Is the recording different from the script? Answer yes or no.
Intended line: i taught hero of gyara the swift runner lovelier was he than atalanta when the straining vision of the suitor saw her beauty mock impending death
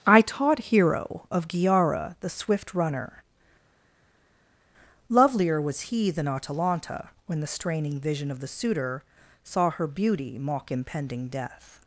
no